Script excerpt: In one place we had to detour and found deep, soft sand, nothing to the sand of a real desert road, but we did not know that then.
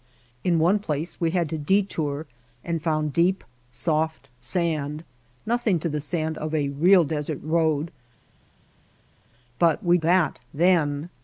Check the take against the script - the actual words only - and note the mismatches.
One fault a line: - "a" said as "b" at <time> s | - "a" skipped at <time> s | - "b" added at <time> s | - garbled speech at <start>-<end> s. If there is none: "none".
- "did not know" skipped at 10.0 s